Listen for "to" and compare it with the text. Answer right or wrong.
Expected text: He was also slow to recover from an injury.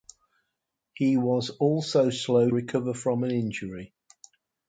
wrong